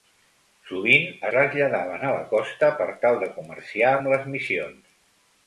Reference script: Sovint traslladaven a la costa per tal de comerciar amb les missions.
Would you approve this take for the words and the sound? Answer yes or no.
yes